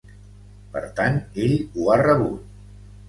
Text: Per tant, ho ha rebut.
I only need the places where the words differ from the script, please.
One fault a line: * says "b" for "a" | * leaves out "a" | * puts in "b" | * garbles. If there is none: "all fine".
* puts in "ell"